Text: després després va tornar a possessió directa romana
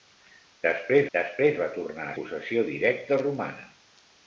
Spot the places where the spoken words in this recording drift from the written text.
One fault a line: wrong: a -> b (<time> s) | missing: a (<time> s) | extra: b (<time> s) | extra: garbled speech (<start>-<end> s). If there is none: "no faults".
no faults